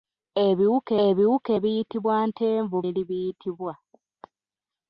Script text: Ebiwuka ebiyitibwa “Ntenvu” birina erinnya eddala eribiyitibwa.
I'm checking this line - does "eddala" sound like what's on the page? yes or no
no